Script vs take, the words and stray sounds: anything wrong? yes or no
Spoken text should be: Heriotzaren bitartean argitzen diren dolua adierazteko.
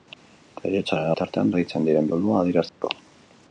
yes